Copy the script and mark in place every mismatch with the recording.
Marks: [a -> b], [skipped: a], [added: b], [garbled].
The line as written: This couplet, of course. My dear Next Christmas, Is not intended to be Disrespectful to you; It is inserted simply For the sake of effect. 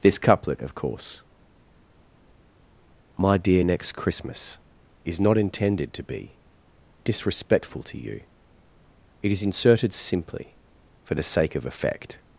This couplet, of course. My dear Next Christmas, Is not intended to be Disrespectful to you; It is inserted simply For the sake of effect.